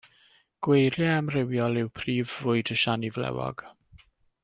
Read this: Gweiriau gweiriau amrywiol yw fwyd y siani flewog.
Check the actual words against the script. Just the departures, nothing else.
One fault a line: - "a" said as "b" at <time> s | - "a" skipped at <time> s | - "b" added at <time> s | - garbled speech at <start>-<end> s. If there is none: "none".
- "gweiriau" skipped at 1.1 s
- "prif" added at 2.0 s